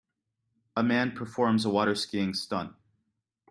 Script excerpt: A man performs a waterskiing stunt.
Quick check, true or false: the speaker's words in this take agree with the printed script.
true